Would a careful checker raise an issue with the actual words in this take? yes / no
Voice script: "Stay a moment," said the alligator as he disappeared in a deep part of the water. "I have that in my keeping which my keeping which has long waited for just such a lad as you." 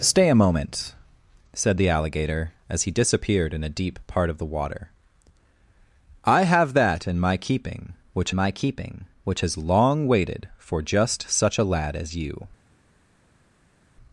no